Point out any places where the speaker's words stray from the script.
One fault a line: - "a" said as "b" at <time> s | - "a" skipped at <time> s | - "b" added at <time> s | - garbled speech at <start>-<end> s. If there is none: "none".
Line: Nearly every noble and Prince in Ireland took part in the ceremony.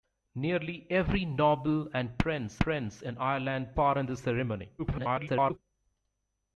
- "Prince" added at 2.6 s
- "took" skipped at 3.8 s
- garbled speech at 4.8-5.6 s